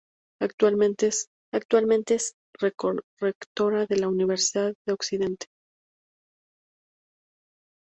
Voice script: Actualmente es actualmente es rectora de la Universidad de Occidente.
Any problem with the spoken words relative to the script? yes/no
no